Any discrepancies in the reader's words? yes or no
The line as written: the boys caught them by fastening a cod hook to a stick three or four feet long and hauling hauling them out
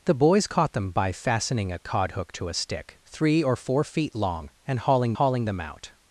no